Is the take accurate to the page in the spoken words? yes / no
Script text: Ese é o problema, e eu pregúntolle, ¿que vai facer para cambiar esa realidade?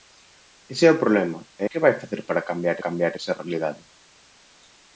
no